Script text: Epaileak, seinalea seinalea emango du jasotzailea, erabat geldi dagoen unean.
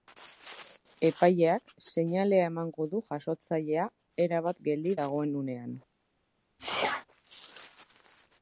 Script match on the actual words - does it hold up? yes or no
no